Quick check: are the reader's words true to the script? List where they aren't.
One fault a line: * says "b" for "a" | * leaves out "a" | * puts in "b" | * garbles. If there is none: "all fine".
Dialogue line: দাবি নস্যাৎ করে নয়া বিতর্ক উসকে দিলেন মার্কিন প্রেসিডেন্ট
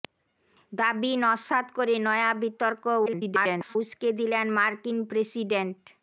* garbles